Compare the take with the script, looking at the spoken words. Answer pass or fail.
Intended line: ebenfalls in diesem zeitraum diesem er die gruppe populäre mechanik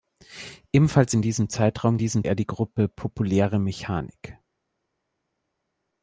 pass